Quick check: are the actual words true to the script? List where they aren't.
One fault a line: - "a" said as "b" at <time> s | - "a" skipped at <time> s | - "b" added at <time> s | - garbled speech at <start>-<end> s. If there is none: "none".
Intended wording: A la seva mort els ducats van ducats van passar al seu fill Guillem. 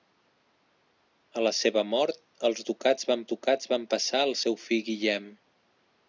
none